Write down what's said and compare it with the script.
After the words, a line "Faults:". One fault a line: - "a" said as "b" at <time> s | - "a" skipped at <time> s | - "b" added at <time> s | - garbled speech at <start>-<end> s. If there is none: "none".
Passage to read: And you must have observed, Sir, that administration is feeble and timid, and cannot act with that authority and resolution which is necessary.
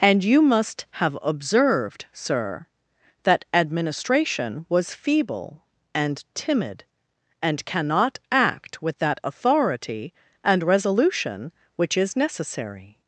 And you must have observed, Sir, that administration was feeble and timid, and cannot act with that authority and resolution which is necessary.
Faults:
- "is" said as "was" at 4.7 s